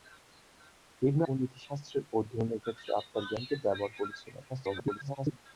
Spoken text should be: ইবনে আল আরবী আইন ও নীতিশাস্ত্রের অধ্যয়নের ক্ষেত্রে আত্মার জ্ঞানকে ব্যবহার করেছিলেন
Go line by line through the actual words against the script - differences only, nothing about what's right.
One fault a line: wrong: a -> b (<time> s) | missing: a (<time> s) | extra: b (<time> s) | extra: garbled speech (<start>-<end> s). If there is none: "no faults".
missing: আল আরবী আইন (1.2 s)
extra: garbled speech (4.5-5.4 s)